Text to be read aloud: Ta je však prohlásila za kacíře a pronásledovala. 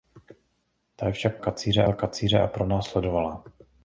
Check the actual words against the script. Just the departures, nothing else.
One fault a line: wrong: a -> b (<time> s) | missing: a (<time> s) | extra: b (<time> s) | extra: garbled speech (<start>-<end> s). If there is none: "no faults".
wrong: prohlásila -> kacíře (1.4 s)